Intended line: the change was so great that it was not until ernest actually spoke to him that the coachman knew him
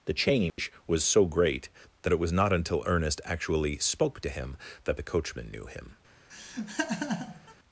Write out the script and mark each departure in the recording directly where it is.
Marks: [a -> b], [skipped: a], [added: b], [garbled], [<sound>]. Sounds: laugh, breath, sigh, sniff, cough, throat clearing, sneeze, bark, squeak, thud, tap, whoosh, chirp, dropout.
the change [dropout] was so great that it was not until ernest actually spoke to him that the coachman knew him [laugh]